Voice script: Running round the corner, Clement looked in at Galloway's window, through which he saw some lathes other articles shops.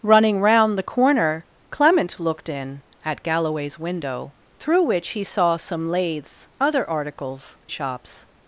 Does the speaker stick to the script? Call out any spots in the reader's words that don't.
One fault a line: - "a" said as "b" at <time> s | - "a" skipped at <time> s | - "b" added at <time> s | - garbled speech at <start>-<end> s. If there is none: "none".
none